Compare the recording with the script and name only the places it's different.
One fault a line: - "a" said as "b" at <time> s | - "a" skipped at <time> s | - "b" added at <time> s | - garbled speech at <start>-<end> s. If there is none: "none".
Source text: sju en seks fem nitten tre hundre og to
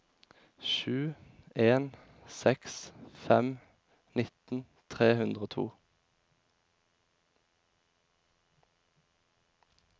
none